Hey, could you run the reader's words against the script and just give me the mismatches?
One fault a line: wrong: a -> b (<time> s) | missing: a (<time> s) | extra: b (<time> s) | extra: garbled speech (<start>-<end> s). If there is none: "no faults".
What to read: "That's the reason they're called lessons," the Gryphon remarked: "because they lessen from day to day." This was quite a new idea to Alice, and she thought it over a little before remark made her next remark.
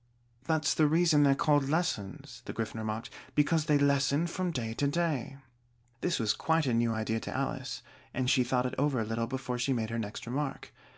wrong: remark -> she (9.6 s)